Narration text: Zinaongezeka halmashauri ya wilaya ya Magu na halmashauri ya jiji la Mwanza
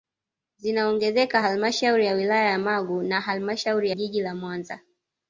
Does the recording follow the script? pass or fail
fail